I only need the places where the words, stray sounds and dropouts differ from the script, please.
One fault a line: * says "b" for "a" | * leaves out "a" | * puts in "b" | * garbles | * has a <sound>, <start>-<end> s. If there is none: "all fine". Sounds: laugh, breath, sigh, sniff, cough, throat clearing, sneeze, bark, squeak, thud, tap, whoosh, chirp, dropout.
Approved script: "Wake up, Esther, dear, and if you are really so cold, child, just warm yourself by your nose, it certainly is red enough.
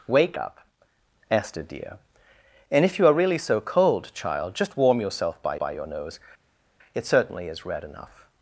* puts in "by"